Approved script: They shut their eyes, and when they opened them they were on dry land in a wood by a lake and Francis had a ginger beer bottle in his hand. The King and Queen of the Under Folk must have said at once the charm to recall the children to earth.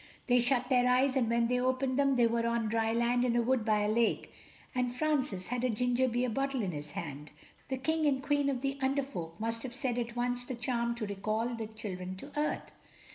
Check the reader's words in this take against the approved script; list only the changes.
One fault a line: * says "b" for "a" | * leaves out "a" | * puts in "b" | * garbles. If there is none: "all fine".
all fine